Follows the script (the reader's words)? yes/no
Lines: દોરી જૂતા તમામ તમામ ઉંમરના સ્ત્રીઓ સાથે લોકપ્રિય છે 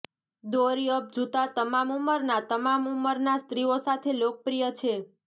no